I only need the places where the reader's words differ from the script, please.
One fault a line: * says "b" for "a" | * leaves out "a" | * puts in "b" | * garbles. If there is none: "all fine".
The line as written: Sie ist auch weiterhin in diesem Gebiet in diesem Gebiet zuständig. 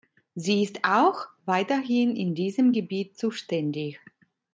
* leaves out "in diesem Gebiet"